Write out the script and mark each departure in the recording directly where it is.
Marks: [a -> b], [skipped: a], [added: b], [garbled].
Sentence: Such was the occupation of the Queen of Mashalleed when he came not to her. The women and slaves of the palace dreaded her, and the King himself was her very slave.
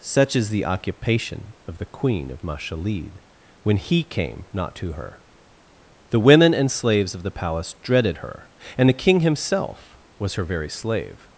Such [was -> is] the occupation of the Queen of Mashalleed when he came not to her. The women and slaves of the palace dreaded her, and the King himself was her very slave.